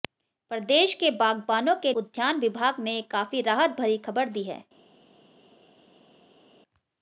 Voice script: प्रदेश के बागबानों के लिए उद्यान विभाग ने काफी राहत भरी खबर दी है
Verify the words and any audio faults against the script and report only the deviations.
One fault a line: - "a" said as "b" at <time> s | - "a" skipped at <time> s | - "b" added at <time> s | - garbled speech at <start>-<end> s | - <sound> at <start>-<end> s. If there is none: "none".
- "लिए" skipped at 1.9 s